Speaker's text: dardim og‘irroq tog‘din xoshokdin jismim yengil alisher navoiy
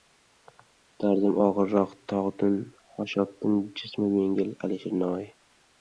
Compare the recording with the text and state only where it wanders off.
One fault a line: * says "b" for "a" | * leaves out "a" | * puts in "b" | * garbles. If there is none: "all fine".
all fine